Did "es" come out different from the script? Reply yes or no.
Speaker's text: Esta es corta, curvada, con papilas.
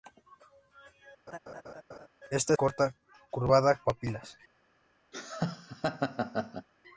yes